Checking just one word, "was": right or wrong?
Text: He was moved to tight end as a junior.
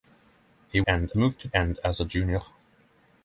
wrong